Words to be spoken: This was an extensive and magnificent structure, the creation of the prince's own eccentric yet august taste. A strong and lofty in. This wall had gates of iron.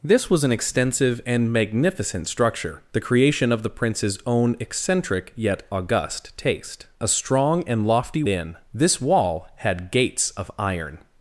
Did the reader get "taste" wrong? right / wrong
right